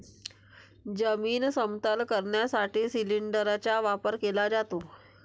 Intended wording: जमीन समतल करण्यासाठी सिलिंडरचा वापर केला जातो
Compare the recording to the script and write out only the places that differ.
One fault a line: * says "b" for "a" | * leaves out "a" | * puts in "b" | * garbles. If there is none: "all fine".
all fine